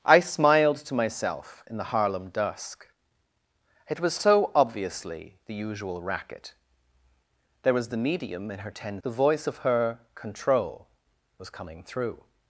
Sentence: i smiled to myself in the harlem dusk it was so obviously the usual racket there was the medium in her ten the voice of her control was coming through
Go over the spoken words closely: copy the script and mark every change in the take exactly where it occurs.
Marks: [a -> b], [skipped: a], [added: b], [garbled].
i smiled to myself in the harlem dusk it was so obviously the usual racket there was the medium in her ten the voice of her control was coming through